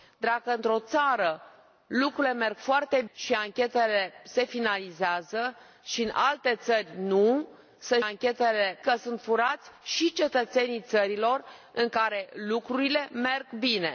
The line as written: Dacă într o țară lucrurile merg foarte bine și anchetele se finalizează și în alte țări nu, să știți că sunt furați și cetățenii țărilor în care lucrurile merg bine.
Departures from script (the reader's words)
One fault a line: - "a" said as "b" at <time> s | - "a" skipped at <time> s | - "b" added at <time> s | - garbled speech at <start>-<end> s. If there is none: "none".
- "bine" skipped at 3.0 s
- "știți" said as "anchetele" at 8.0 s